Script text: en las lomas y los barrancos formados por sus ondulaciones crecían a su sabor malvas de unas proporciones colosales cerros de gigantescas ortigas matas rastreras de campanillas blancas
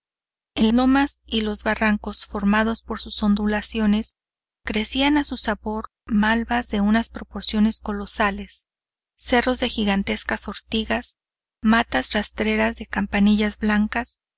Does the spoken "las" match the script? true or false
false